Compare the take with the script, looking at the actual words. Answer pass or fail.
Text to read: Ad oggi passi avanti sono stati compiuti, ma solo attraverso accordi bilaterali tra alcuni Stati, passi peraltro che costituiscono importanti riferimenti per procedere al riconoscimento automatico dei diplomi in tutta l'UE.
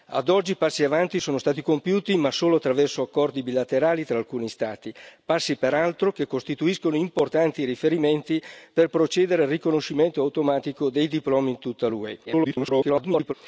fail